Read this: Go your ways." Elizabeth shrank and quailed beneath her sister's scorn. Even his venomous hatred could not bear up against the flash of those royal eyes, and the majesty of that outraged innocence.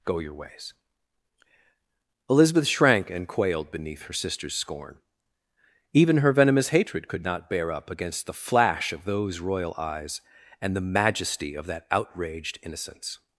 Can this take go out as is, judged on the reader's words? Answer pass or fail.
fail